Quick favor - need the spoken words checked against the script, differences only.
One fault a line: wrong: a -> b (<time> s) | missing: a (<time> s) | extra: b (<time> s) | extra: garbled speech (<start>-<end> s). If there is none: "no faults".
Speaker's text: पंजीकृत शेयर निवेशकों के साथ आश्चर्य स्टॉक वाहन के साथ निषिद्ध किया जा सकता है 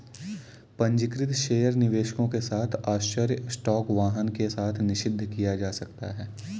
no faults